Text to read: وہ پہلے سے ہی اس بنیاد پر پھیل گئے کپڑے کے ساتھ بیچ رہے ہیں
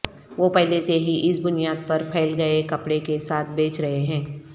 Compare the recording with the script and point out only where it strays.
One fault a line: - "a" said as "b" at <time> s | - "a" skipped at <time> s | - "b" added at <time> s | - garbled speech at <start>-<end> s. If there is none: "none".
none